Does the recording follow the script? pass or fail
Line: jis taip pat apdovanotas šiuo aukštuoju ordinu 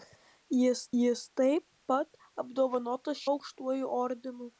fail